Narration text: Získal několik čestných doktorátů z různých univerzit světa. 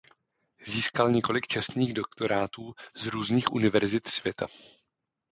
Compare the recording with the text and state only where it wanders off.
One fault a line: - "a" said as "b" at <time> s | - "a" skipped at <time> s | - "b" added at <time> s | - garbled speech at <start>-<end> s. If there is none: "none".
none